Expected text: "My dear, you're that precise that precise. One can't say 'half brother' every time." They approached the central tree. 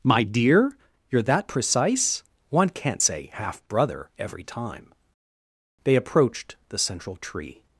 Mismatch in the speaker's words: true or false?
true